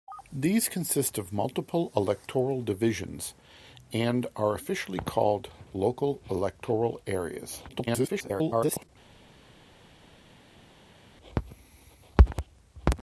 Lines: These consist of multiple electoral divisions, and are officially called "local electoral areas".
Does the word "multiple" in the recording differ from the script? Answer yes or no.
no